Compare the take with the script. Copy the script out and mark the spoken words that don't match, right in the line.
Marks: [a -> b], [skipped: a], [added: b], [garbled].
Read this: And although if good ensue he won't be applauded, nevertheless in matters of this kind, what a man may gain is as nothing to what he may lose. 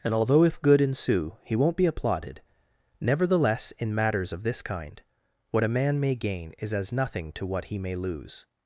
And although if good ensue he won't be applauded, nevertheless in matters of this kind, what a man may gain is as nothing to what he may lose.